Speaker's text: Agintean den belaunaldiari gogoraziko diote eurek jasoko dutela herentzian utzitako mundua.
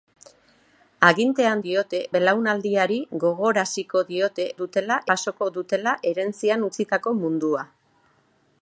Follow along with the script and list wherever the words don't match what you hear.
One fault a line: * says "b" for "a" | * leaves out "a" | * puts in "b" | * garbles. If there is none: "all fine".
* says "diote" for "den"
* says "dutela" for "eurek"